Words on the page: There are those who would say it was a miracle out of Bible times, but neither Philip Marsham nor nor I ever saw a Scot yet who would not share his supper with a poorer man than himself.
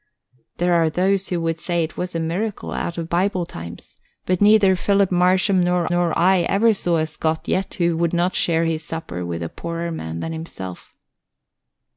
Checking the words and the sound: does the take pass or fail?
pass